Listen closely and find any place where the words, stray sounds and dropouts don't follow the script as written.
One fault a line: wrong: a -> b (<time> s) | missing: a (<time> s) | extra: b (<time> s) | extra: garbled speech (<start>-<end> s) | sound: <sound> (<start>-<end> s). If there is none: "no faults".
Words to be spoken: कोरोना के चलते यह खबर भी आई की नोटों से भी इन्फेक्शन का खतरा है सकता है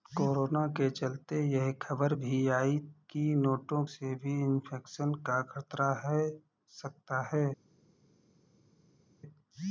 no faults